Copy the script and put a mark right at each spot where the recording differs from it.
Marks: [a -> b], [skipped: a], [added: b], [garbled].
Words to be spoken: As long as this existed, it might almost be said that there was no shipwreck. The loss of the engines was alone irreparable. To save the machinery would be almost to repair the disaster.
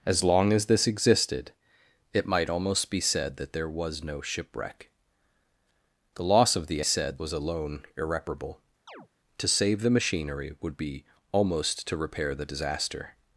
As long as this existed, it might almost be said that there was no shipwreck. The loss of the [engines -> said] was alone irreparable. To save the machinery would be almost to repair the disaster.